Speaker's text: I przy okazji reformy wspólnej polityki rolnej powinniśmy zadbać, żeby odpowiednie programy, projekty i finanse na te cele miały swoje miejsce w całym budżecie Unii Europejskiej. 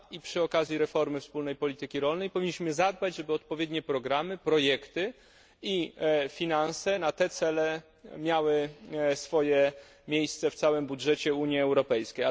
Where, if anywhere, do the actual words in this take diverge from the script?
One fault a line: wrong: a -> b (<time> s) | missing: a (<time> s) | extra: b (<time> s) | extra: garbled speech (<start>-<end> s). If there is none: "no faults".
no faults